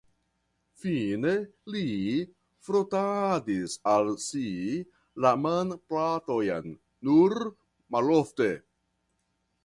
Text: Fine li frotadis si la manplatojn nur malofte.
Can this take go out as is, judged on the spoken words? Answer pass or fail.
fail